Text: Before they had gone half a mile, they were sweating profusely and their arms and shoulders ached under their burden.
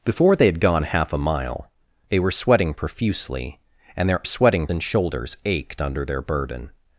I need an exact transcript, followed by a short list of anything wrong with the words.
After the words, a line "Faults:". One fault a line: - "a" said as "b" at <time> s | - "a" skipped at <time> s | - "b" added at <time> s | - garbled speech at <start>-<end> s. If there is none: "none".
Before they had gone half a mile, they were sweating profusely and their sweating and shoulders ached under their burden.
Faults:
- "arms" said as "sweating" at 4.2 s